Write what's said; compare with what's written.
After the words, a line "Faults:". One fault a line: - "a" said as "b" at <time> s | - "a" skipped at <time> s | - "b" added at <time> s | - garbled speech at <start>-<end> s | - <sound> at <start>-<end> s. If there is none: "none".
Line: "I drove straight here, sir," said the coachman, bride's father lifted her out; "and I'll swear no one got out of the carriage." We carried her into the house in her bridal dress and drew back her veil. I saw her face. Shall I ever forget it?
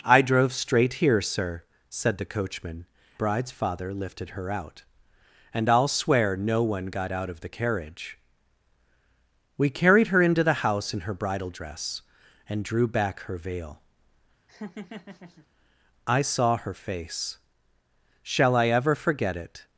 "I drove straight here, sir," said the coachman, bride's father lifted her out; "and I'll swear no one got out of the carriage." We carried her into the house in her bridal dress and drew back her veil. I saw her face. Shall I ever forget it?
Faults:
- laugh at 14.5-15.5 s